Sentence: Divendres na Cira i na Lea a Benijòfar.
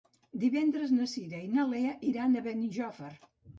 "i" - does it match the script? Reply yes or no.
yes